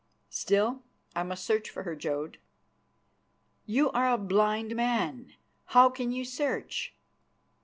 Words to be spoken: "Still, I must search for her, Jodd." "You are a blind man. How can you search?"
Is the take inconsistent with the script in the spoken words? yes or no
no